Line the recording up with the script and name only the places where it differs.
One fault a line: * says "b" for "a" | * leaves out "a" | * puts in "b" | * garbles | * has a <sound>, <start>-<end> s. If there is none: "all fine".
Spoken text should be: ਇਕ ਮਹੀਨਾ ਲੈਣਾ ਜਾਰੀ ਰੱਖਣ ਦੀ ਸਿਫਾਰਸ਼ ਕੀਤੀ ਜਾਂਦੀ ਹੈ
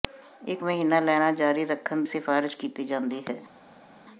* leaves out "ਦੀ"